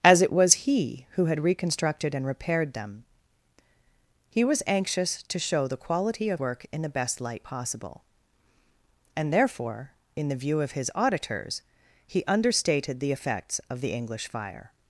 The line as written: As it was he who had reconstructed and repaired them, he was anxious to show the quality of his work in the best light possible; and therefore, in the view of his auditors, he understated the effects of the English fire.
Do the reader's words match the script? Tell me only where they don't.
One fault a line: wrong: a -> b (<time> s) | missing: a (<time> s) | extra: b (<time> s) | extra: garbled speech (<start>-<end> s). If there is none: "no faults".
missing: his (6.4 s)